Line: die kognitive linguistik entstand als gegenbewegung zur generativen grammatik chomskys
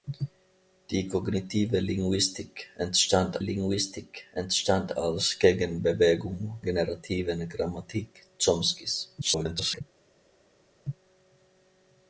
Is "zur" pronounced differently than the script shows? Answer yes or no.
yes